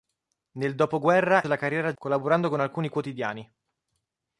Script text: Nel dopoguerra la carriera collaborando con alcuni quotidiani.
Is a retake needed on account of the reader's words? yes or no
no